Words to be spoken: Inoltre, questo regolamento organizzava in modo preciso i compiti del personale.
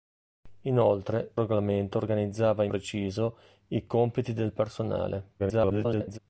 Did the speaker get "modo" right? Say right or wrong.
wrong